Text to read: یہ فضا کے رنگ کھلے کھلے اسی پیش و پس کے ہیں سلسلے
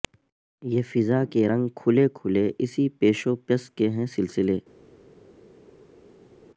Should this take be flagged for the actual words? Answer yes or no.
no